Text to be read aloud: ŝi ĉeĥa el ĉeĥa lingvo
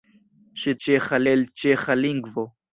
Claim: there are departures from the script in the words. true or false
false